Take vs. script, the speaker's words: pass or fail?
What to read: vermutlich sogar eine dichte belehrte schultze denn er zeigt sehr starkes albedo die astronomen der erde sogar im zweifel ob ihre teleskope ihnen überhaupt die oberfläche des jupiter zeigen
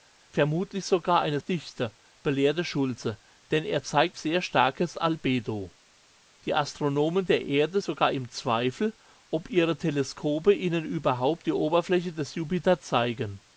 pass